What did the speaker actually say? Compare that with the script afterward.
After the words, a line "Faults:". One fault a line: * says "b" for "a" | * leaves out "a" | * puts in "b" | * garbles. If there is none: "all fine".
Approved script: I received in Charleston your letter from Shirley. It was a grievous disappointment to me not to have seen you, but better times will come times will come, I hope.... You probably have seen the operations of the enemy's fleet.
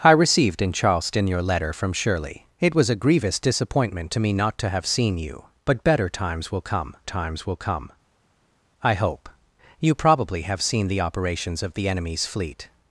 I received in Charleston your letter from Shirley. It was a grievous disappointment to me not to have seen you, but better times will come times will come, I hope.... You probably have seen the operations of the enemy's fleet.
Faults:
all fine